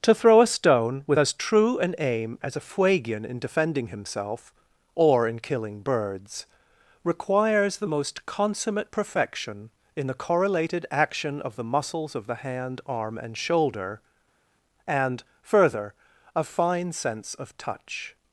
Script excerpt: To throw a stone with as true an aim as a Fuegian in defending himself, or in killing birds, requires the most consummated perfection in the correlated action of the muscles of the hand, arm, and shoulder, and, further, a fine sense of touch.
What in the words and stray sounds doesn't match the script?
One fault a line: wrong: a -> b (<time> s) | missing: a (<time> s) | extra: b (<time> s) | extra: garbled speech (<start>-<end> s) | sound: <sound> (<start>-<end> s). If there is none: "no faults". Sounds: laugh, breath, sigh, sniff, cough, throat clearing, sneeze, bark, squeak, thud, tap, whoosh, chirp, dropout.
wrong: consummated -> consummate (8.2 s)